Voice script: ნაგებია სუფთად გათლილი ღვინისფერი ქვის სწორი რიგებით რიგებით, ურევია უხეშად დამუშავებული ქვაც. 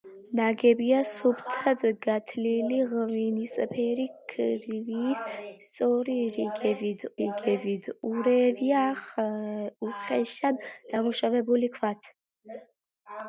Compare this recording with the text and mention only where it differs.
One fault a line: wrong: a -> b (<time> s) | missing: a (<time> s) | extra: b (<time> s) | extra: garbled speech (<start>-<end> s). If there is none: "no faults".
no faults